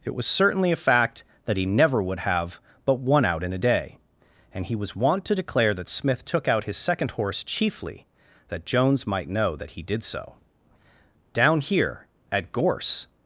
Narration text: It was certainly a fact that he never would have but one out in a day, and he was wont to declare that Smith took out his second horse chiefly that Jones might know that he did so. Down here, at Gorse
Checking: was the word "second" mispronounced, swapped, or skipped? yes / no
no